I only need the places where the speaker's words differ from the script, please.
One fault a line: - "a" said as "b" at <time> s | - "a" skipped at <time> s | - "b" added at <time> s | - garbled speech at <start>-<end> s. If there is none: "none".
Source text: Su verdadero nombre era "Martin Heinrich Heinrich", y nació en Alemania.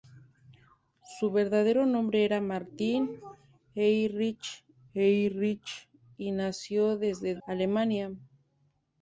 none